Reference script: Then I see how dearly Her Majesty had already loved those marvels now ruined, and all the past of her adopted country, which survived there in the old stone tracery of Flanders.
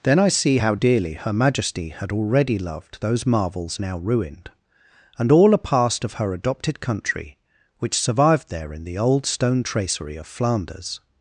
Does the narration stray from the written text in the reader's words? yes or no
yes